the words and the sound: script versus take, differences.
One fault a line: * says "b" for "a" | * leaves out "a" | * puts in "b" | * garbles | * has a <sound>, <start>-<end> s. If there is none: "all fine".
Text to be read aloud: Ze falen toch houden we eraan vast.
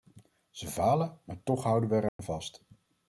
* puts in "maar"
* has a dropout, 2.1-2.2 s